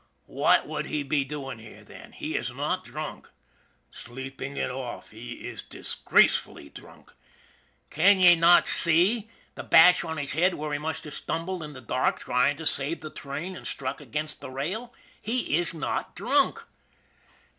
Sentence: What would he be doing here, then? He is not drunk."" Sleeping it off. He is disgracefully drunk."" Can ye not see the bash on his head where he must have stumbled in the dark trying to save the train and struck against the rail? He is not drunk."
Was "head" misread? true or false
false